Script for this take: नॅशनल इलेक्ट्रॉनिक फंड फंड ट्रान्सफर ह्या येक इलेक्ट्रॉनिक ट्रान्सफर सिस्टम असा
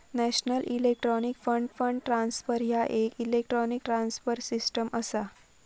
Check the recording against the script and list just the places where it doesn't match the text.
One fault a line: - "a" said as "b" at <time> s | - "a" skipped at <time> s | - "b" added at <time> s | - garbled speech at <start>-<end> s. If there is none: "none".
none